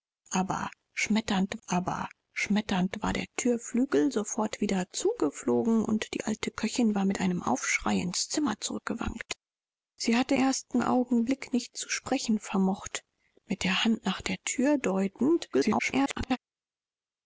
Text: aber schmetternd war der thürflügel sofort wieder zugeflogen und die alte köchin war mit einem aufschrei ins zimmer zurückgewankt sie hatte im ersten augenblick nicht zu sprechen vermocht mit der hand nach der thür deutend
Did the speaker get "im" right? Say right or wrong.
wrong